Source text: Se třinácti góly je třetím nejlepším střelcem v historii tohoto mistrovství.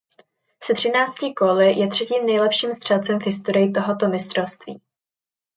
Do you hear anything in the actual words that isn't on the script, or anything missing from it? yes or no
no